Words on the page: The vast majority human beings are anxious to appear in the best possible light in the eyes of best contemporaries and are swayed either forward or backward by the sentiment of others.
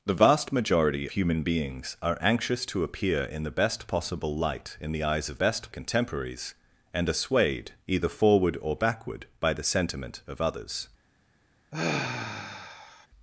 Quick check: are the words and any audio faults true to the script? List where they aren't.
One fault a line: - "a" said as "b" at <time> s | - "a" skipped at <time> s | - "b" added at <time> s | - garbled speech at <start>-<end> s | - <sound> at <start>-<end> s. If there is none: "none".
- sigh at 11.7-13.1 s